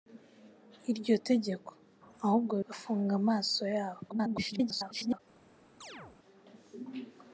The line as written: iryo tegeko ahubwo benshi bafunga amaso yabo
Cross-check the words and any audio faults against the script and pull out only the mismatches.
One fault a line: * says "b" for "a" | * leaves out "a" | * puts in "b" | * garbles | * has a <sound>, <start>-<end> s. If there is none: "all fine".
* leaves out "benshi"
* garbles
* has a chirp, 5.8-6.2 s